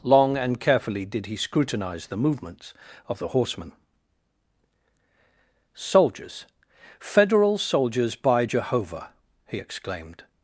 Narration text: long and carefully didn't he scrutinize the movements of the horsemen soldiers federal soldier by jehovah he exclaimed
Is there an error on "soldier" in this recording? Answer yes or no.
yes